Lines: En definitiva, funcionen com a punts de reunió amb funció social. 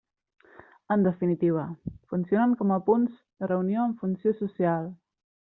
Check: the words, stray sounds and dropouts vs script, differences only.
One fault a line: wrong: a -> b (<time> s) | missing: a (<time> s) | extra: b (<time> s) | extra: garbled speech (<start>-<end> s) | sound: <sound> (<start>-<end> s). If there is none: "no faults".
no faults